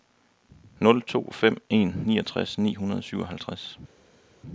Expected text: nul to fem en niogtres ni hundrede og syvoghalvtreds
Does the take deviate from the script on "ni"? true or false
false